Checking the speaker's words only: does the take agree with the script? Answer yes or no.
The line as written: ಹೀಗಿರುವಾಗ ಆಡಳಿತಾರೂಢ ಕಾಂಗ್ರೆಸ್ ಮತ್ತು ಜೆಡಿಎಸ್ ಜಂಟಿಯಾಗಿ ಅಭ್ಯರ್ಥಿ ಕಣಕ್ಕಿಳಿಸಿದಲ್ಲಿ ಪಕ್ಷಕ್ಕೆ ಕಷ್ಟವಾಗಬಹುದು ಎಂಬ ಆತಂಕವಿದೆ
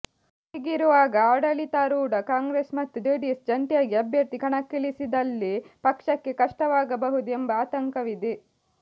yes